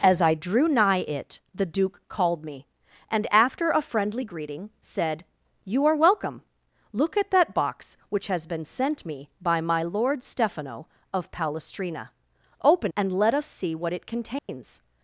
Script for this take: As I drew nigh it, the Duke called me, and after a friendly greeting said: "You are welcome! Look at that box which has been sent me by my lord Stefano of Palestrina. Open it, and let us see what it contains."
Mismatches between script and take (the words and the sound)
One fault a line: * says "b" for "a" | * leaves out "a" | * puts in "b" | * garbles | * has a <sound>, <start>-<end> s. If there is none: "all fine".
* leaves out "it"
* has a dropout, 14.4-14.5 s